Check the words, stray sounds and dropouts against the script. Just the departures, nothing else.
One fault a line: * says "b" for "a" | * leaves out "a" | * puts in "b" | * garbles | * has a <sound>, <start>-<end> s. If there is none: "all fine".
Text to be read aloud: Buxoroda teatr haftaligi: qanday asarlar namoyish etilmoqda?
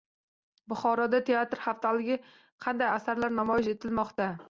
all fine